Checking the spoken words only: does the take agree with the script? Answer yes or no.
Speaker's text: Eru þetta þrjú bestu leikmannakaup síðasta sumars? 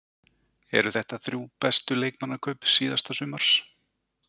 yes